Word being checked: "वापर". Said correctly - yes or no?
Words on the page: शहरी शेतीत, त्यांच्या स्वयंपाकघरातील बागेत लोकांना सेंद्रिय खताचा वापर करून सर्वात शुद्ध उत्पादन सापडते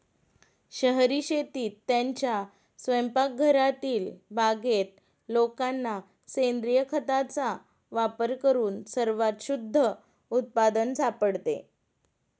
yes